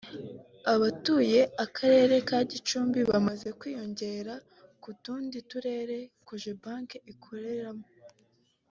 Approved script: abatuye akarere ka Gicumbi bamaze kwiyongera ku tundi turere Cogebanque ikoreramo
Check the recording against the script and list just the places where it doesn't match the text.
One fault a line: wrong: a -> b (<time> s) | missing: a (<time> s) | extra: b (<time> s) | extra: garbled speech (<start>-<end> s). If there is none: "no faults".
no faults